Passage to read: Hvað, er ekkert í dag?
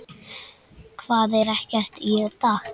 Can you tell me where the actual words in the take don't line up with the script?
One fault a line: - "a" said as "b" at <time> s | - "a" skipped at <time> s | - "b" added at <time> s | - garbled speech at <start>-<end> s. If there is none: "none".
none